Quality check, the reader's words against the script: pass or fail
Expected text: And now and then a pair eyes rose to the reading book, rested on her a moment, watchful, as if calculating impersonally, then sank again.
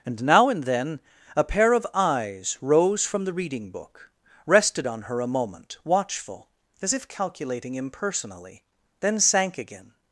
fail